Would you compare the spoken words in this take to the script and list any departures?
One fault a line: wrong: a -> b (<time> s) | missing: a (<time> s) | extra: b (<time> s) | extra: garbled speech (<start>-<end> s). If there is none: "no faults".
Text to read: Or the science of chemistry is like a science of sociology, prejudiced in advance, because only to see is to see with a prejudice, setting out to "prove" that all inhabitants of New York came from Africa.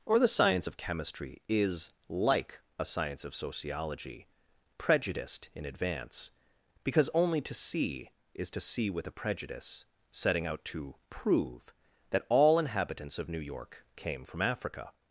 no faults